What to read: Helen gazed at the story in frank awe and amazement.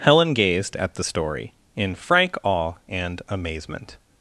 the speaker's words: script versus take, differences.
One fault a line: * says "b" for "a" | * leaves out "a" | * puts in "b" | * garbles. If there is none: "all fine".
all fine